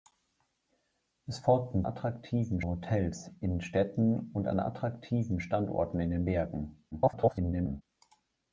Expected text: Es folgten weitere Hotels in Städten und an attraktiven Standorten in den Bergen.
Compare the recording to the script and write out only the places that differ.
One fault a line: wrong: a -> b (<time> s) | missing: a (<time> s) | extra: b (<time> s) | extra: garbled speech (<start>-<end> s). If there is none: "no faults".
wrong: weitere -> attraktiven (1.8 s)
extra: garbled speech (6.9-7.8 s)